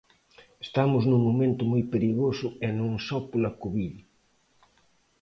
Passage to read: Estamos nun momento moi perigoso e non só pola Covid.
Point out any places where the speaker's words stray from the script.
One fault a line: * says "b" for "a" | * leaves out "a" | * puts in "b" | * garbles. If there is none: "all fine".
all fine